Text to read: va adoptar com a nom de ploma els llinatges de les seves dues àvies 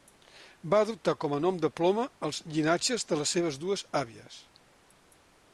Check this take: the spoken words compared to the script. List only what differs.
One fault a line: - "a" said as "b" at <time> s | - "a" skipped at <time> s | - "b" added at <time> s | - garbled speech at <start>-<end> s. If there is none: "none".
none